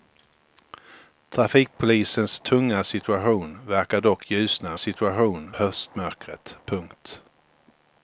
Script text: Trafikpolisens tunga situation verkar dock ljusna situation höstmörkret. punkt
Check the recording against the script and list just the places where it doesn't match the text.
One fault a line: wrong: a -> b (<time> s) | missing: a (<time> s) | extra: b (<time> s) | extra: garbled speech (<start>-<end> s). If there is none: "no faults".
no faults